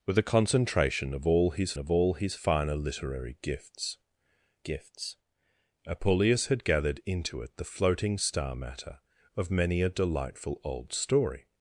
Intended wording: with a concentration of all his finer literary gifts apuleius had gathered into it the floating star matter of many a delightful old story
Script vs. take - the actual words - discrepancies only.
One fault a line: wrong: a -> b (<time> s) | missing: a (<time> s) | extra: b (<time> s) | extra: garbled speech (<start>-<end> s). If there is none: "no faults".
extra: of all his (1.8 s)
extra: gifts (4.6 s)